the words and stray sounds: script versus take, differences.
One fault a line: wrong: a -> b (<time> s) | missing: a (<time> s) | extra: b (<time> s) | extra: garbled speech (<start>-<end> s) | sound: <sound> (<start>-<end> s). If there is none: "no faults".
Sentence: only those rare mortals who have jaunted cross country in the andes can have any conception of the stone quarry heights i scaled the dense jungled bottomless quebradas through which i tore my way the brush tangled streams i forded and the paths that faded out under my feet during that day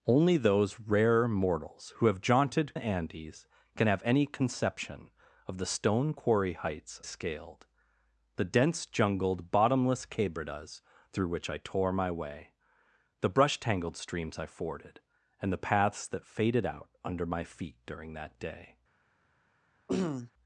missing: cross country in (2.8 s)
missing: i (7.0 s)
sound: throat clearing (19.9-20.3 s)